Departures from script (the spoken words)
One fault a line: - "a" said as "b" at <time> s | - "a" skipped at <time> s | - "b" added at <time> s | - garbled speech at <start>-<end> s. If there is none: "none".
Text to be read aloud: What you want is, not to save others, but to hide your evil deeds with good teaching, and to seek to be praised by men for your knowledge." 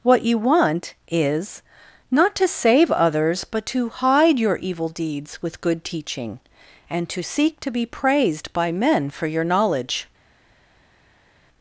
none